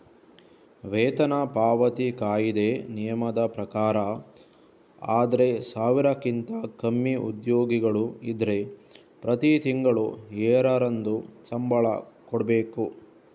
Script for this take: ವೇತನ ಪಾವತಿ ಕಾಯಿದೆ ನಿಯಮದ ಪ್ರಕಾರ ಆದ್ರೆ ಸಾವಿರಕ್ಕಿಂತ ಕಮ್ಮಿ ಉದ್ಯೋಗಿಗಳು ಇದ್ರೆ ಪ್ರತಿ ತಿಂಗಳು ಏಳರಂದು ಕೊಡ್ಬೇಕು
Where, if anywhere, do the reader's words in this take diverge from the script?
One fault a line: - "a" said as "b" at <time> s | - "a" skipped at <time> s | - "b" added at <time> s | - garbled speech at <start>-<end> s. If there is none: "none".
- "ಸಂಬಳ" added at 11.5 s